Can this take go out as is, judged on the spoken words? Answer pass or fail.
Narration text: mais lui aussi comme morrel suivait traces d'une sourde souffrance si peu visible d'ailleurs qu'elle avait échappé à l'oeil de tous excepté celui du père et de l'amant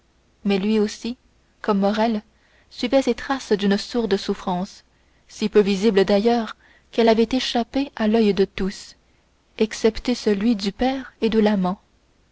fail